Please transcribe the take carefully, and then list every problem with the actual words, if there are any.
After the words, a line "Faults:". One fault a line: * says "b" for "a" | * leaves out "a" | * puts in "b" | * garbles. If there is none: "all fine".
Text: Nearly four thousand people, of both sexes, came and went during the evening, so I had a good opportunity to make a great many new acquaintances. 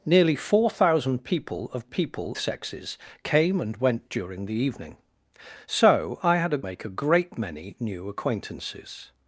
Nearly four thousand people, of people sexes, came and went during the evening, so I had a make a great many new acquaintances.
Faults:
* says "people" for "both"
* leaves out "good opportunity to"